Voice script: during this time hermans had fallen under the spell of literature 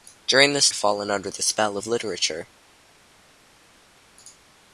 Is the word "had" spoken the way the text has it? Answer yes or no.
no